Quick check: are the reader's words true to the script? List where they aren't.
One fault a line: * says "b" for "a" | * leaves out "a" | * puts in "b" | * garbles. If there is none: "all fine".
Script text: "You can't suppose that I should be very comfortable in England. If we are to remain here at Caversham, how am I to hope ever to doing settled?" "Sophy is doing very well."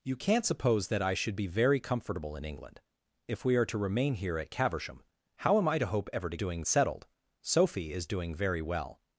all fine